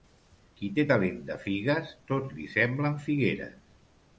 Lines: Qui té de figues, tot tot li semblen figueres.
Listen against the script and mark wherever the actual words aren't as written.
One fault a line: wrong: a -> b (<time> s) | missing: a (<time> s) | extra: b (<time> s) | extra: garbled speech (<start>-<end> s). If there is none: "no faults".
extra: talent (0.9 s)
missing: tot (2.4 s)